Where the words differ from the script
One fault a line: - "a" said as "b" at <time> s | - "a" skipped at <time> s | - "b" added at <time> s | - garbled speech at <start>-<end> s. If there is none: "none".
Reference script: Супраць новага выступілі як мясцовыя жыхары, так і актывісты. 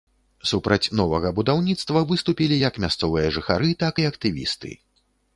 - "будаўніцтва" added at 1.4 s